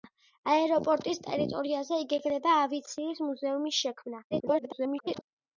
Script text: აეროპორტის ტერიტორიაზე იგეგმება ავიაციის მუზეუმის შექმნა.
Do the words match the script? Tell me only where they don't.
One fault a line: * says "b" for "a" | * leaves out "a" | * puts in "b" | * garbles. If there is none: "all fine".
* garbles